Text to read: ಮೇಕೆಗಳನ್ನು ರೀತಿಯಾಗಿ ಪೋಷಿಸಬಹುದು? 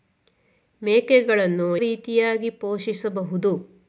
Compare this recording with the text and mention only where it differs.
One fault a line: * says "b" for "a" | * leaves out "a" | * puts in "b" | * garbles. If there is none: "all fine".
all fine